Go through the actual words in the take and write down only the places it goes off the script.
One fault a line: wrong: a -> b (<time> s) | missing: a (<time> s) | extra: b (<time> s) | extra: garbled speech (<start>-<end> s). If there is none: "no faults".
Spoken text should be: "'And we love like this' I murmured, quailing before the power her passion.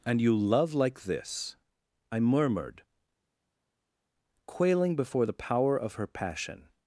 wrong: we -> you (0.2 s)
extra: of (5.8 s)